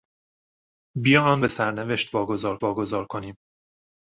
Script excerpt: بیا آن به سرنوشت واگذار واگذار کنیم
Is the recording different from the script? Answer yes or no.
no